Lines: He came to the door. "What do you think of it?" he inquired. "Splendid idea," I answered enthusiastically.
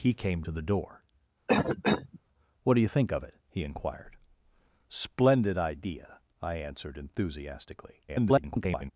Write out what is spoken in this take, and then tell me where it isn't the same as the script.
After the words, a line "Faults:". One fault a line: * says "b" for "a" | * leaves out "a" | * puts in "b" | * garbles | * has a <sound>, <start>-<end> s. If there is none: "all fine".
He came to the door. "What do you think of it?" he inquired. "Splendid idea," I answered enthusiastically. [garbled]
Faults:
* has a cough, 1.5-2.2 s
* garbles